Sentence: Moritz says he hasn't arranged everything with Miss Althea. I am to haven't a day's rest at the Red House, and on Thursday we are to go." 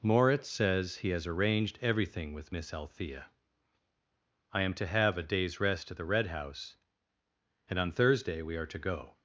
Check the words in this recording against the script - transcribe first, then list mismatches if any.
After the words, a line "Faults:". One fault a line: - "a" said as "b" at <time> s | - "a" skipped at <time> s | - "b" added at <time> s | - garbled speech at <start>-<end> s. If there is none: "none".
Moritz says he has arranged everything with Miss Althea. I am to have a day's rest at the Red House, and on Thursday we are to go."
Faults:
- "hasn't" said as "has" at 1.1 s
- "haven't" said as "have" at 4.9 s